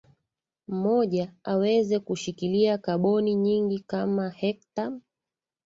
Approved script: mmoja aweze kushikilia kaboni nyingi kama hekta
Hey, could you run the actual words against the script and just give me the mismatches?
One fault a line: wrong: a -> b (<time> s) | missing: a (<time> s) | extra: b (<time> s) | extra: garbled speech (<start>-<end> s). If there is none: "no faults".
no faults